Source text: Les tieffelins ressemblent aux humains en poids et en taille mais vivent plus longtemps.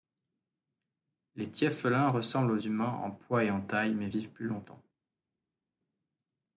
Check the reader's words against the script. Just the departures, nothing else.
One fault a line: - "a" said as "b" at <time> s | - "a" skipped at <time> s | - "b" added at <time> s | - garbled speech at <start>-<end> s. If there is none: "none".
none